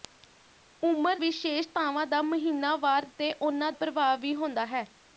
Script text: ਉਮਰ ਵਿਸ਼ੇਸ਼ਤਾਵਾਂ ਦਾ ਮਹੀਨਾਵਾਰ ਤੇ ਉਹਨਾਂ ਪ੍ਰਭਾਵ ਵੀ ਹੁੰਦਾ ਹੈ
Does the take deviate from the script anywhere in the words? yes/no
no